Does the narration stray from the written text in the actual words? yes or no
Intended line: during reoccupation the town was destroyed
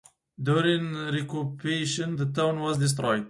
no